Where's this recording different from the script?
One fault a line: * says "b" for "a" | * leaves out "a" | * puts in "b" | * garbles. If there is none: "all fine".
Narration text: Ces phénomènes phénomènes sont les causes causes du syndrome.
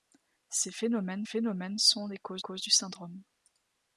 all fine